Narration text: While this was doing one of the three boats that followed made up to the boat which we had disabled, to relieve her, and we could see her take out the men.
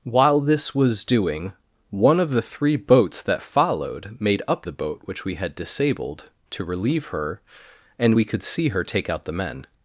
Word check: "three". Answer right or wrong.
right